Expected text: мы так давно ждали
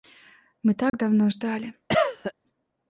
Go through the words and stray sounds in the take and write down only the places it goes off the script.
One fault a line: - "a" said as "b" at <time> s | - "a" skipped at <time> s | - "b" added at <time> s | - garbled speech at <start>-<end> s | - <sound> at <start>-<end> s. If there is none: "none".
- dropout at 0.9-0.9 s
- cough at 1.9-2.3 s